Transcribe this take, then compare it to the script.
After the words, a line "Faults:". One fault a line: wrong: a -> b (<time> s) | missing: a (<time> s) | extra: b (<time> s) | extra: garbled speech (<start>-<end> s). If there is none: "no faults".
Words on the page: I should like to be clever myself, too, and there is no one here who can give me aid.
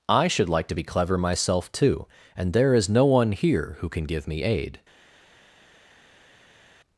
I should like to be clever myself, too, and there is no one here who can give me aid.
Faults:
no faults